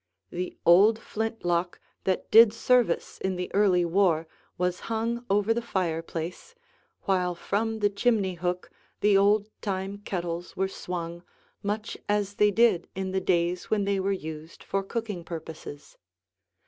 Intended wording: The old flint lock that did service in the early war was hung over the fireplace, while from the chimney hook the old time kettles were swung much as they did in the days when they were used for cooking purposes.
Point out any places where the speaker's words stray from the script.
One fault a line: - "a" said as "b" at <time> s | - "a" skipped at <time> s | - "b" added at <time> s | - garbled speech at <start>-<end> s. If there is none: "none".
none